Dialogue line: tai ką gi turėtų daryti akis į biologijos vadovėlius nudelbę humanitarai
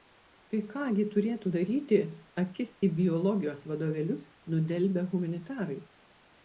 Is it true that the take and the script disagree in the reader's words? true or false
false